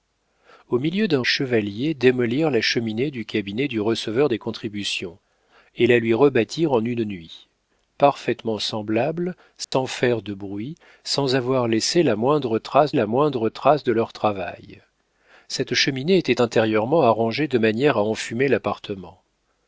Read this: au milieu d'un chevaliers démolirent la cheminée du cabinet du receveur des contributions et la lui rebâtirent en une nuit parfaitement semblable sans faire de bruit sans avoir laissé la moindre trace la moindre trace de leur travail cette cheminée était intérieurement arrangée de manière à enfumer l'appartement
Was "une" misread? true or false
false